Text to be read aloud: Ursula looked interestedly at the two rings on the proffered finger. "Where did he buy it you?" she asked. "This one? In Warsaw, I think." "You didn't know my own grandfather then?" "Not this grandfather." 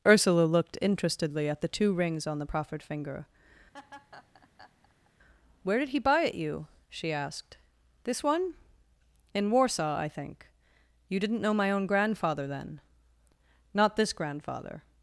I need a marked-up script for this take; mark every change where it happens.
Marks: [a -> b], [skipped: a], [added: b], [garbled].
Ursula looked interestedly at the two rings on the proffered finger. "Where did he buy it you?" she asked. "This one? In Warsaw, I think." "You didn't know my own grandfather then?" "Not this grandfather."